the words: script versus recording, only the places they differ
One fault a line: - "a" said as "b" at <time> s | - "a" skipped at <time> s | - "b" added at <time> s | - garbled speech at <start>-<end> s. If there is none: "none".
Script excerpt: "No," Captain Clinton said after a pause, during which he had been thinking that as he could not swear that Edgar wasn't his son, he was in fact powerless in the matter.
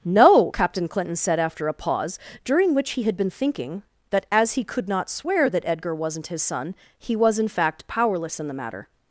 none